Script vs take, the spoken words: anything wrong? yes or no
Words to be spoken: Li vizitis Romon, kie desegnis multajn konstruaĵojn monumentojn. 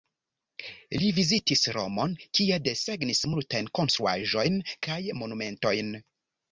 yes